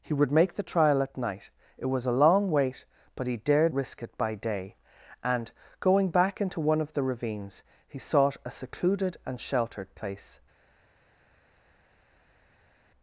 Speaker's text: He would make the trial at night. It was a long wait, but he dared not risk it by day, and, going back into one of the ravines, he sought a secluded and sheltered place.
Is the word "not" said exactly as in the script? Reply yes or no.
no